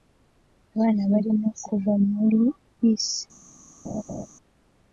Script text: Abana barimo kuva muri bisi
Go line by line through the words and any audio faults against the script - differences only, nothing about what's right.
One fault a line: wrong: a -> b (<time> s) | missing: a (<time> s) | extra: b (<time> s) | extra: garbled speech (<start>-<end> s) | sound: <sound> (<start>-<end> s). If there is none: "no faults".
sound: laugh (3.8-4.3 s)